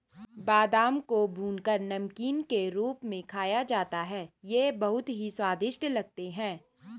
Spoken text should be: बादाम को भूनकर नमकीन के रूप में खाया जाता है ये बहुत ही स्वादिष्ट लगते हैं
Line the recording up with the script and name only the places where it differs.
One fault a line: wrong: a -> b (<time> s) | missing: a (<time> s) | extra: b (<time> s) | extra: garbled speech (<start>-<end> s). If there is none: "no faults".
no faults